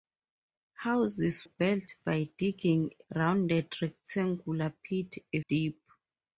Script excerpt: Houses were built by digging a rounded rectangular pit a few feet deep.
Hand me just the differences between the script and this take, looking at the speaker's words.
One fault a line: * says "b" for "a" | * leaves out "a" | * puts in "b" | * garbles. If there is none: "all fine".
* leaves out "were"
* leaves out "a"
* leaves out "few feet"